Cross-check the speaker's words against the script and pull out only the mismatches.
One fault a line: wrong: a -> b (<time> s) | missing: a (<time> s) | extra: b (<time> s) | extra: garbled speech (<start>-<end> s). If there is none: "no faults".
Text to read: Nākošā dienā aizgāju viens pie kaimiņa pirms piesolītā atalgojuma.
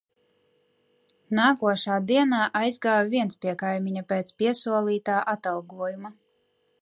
wrong: pirms -> pēc (4.1 s)